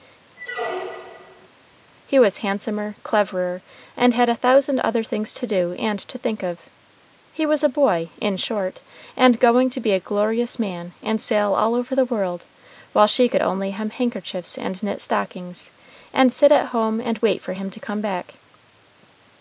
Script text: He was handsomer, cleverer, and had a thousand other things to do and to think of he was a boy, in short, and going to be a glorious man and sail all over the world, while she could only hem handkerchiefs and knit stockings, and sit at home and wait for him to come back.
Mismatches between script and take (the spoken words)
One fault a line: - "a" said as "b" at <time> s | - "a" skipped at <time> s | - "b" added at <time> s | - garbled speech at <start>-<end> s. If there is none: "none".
none